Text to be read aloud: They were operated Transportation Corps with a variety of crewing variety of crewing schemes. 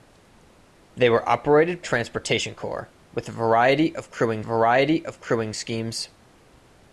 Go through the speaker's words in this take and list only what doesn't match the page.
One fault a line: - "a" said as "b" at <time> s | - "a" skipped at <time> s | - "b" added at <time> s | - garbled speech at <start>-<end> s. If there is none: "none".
none